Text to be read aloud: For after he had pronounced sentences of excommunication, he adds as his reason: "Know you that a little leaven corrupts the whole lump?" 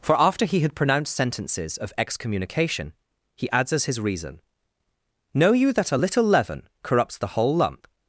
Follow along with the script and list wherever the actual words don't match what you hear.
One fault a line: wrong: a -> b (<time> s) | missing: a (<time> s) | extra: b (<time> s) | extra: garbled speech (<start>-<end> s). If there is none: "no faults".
no faults